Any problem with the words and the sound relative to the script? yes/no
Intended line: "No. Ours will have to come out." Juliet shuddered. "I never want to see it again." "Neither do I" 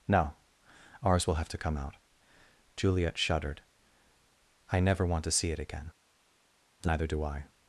no